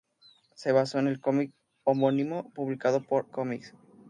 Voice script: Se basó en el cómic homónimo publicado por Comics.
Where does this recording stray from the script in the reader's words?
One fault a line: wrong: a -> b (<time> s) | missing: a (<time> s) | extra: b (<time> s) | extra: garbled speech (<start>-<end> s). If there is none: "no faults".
no faults